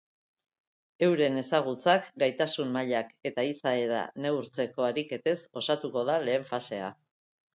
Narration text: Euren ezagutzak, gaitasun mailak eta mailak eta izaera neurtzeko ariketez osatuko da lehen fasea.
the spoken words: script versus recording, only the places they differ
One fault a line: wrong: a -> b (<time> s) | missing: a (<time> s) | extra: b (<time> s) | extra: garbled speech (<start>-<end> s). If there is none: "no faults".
missing: mailak eta (3.5 s)